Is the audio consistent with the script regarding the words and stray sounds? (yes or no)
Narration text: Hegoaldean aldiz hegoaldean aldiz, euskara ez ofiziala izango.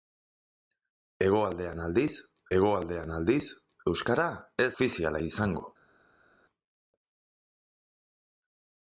yes